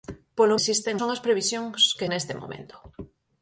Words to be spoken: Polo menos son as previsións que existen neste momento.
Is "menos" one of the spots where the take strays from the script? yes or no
yes